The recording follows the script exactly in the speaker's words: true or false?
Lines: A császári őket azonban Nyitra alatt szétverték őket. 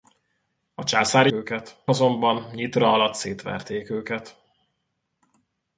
true